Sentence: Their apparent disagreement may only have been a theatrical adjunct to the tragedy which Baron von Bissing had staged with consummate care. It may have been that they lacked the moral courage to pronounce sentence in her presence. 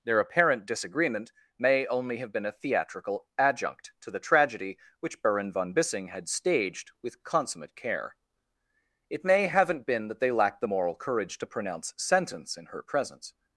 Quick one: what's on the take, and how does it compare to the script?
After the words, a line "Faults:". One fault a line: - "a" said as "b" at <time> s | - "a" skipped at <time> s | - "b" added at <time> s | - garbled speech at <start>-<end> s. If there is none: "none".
Their apparent disagreement may only have been a theatrical adjunct to the tragedy which Baron von Bissing had staged with consummate care. It may haven't been that they lacked the moral courage to pronounce sentence in her presence.
Faults:
- "have" said as "haven't" at 9.5 s